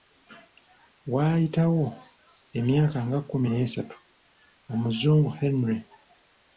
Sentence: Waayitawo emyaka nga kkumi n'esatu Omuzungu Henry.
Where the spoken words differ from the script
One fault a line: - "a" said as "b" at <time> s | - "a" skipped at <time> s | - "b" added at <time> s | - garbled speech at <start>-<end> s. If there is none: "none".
none